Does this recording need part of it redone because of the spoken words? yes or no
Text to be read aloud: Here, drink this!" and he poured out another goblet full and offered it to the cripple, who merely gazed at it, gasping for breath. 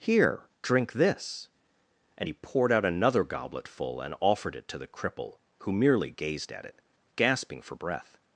no